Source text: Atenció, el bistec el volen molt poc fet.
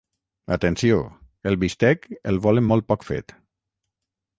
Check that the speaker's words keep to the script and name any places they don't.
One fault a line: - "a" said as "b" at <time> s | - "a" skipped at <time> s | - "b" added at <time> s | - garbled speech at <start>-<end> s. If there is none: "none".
none